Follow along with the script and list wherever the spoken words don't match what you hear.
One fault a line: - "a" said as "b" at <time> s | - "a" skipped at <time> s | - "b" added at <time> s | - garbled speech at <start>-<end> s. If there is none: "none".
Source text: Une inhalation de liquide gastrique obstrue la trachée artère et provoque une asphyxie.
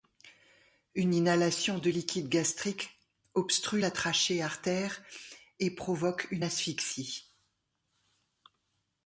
none